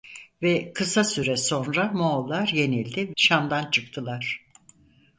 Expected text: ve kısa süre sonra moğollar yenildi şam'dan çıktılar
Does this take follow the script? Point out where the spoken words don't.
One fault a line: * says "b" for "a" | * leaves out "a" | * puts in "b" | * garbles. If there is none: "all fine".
all fine